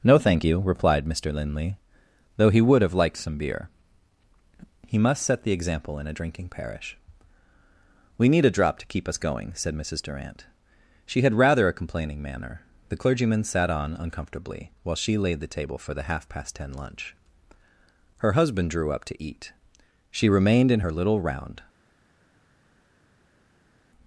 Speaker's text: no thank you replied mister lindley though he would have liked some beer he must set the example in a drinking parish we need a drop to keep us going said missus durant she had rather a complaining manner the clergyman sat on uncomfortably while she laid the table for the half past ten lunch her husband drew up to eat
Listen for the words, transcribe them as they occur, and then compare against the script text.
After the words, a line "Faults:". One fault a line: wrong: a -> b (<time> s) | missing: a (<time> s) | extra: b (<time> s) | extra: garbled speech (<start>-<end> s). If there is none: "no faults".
no thank you replied mister lindley though he would have liked some beer he must set the example in a drinking parish we need a drop to keep us going said missus durant she had rather a complaining manner the clergyman sat on uncomfortably while she laid the table for the half past ten lunch her husband drew up to eat she remained in her little round
Faults:
extra: she remained in her little round (20.1 s)